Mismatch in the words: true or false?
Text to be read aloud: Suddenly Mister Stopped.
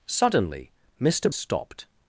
false